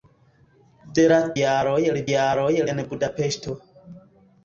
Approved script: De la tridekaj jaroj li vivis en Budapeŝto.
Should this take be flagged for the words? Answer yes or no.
yes